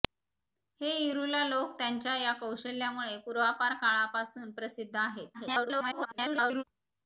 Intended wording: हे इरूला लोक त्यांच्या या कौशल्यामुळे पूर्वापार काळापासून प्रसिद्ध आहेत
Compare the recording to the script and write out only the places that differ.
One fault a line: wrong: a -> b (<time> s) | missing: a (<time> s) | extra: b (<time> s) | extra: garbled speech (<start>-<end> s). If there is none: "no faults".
extra: garbled speech (5.3-6.6 s)